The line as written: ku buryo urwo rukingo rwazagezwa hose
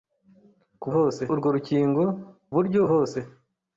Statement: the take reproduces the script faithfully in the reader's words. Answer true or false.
false